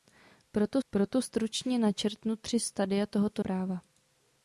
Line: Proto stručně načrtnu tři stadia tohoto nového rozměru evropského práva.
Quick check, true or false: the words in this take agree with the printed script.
false